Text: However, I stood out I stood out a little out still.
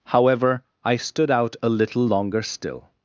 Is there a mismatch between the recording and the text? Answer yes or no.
yes